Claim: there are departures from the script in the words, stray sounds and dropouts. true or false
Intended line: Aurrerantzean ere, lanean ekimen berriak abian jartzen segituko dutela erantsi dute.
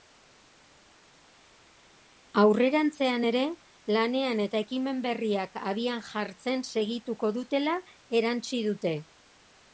true